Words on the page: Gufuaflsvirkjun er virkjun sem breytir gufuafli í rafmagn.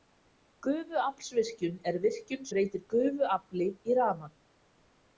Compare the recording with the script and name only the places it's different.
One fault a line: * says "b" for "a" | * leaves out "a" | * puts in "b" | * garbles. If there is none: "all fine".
* leaves out "sem"